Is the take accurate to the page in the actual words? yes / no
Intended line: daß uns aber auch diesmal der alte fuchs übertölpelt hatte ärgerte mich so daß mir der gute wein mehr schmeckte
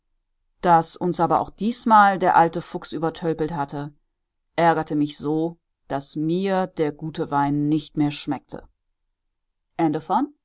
no